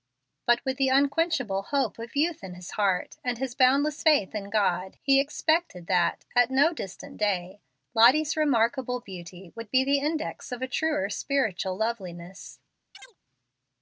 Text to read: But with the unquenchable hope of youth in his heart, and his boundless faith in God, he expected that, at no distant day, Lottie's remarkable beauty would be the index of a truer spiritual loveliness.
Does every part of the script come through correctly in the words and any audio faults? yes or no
no